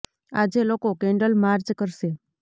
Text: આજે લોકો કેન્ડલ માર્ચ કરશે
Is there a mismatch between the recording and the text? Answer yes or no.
no